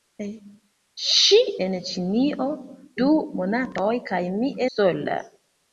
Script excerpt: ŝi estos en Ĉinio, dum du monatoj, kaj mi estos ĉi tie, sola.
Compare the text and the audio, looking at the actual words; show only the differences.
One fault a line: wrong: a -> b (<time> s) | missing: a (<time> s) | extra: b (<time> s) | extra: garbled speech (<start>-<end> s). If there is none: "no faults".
missing: estos (1.4 s)
missing: dum (2.5 s)
missing: estos ĉi tie (4.5 s)